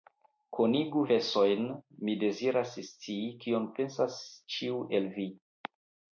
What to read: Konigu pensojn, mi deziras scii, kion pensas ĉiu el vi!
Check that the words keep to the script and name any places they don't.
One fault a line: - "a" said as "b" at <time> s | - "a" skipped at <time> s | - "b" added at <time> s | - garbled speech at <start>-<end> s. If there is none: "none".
none